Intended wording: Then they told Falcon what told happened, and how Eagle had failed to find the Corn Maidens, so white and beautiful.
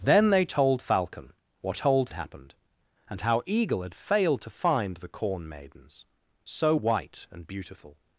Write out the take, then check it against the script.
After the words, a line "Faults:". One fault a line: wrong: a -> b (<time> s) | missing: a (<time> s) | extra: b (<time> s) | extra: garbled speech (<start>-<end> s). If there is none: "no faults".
Then they told Falcon what told happened, and how Eagle had failed to find the Corn Maidens, so white and beautiful.
Faults:
no faults